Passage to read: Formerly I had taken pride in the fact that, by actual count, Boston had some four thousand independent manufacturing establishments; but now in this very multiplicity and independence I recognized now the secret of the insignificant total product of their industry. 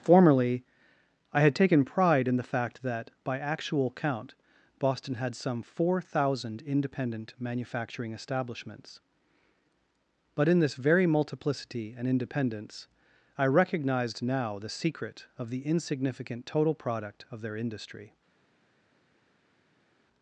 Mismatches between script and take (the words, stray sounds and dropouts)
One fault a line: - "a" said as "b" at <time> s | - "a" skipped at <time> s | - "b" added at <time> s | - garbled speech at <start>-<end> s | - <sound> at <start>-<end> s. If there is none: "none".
- "now" skipped at 10.5 s